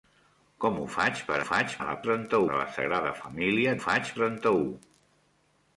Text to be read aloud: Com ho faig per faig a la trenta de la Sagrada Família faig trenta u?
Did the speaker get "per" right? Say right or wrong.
right